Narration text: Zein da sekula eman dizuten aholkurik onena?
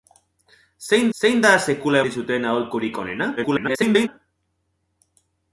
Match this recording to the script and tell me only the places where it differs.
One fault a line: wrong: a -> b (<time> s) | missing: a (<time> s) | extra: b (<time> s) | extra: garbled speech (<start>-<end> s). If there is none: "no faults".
extra: zein (1.2 s)
missing: eman (2.0 s)
extra: garbled speech (3.4-4.1 s)